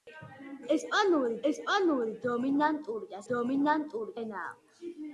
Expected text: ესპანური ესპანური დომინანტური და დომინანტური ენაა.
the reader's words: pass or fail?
pass